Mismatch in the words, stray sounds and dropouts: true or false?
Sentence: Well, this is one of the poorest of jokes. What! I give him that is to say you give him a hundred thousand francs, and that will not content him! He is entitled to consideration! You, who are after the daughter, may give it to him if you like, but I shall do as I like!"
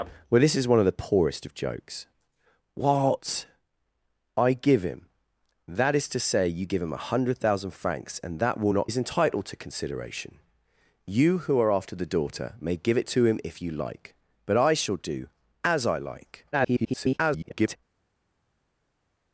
true